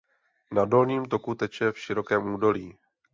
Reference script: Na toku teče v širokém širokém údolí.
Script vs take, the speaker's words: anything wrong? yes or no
yes